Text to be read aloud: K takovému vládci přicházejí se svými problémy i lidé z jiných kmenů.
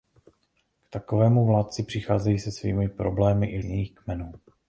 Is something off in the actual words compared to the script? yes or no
yes